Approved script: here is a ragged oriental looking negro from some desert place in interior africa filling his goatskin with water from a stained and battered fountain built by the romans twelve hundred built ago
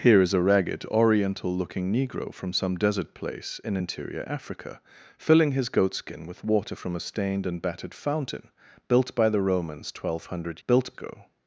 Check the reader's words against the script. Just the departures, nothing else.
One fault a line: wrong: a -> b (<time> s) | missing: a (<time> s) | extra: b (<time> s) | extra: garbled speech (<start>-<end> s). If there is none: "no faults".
no faults